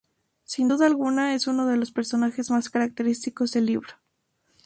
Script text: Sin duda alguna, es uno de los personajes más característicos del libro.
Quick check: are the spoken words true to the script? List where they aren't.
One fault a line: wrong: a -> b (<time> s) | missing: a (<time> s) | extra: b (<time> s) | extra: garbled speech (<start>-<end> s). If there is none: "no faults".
no faults